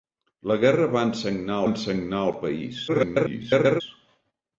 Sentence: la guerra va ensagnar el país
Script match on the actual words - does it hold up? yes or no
no